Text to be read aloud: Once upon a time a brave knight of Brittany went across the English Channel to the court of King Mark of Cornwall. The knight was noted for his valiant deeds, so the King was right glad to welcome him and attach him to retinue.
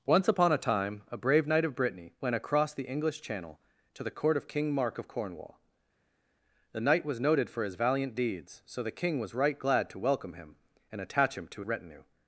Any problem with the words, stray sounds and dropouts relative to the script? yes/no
no